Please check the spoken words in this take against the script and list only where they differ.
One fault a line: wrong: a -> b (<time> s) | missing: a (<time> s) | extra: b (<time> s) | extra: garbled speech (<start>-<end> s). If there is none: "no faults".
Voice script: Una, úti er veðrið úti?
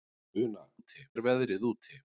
no faults